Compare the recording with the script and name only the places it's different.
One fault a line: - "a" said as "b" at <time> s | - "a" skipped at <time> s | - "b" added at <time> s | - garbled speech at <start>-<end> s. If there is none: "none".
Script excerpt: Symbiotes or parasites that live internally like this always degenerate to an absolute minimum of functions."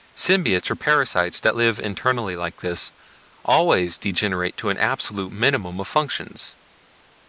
none